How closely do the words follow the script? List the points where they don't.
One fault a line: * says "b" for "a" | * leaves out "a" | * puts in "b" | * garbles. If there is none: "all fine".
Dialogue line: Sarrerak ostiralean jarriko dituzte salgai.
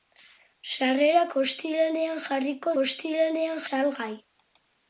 * says "ostiralean" for "dituzte"